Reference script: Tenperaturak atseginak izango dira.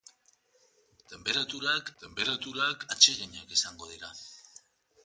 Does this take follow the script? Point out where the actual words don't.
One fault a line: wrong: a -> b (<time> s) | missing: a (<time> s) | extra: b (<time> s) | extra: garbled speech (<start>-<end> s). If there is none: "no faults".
extra: tenperaturak (2.0 s)